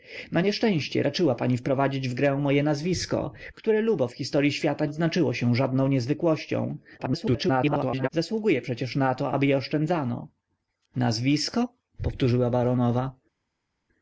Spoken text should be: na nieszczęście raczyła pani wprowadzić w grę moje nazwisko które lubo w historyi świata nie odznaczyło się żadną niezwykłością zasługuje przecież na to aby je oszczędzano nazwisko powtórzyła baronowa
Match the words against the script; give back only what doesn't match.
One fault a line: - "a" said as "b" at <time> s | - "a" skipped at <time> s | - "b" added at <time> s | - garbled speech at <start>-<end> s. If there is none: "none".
- "nie" skipped at 4.8 s
- garbled speech at 7.0-8.1 s